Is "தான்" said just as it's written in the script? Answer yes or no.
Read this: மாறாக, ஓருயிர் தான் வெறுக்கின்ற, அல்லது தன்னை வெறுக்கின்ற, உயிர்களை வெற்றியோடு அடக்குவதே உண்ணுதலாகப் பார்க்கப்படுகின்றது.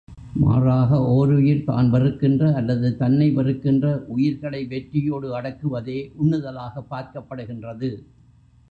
yes